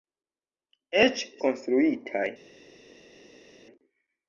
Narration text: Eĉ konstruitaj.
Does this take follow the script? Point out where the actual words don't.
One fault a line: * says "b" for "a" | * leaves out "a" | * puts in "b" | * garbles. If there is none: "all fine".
all fine